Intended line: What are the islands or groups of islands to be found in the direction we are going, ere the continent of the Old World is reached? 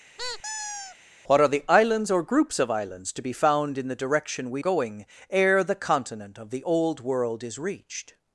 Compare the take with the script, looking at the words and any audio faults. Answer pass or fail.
fail